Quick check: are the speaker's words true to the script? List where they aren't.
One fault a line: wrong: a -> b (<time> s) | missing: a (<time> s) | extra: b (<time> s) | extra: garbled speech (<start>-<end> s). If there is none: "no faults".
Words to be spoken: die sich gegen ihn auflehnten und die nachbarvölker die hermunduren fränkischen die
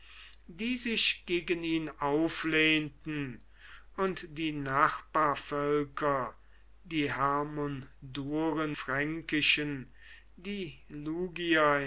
no faults